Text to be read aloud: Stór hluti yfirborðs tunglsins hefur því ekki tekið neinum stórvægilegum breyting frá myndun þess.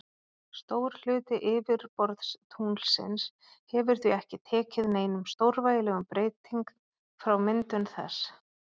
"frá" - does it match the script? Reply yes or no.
yes